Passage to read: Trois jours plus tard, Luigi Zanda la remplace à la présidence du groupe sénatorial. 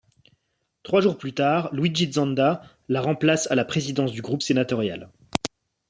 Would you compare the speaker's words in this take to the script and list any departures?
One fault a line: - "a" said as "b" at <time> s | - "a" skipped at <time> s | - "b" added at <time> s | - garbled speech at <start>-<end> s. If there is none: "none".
none